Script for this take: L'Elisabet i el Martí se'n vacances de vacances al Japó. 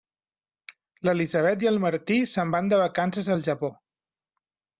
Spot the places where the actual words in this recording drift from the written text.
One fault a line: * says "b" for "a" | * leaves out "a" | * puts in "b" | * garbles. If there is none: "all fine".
* says "van" for "vacances"